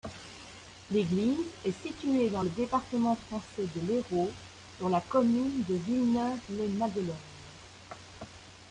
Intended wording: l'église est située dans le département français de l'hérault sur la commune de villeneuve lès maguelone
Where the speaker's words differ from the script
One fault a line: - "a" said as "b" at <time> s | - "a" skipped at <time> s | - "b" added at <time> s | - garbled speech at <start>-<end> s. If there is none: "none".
none